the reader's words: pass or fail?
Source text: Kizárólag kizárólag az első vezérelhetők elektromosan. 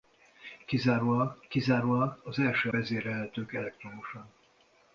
pass